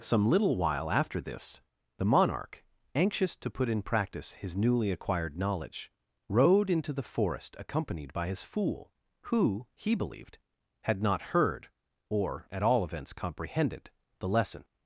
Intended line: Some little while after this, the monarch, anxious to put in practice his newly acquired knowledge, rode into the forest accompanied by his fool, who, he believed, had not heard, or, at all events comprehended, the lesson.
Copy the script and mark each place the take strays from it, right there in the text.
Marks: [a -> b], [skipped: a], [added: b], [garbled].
Some little while after this, the monarch, anxious to put in practice his newly acquired knowledge, rode into the forest accompanied by his fool, who, he believed, had not heard, or, at all events comprehended, the lesson.